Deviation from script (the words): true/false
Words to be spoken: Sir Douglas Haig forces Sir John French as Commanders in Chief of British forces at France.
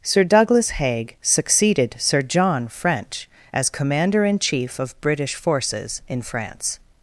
true